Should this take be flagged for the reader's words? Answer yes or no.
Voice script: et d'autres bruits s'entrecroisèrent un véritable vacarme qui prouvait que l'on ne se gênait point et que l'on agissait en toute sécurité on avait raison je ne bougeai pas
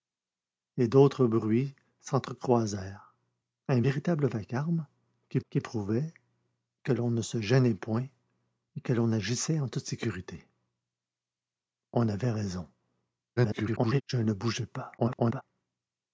yes